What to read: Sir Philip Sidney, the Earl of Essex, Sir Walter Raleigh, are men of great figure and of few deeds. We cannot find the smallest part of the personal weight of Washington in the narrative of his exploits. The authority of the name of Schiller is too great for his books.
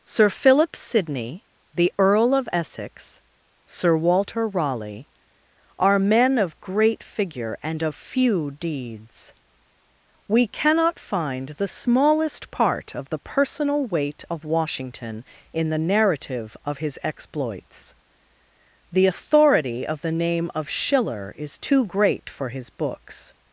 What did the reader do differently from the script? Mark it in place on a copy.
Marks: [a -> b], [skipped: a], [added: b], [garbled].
Sir Philip Sidney, the Earl of Essex, Sir Walter Raleigh, are men of great figure and of few deeds. We cannot find the smallest part of the personal weight of Washington in the narrative of his exploits. The authority of the name of Schiller is too great for his books.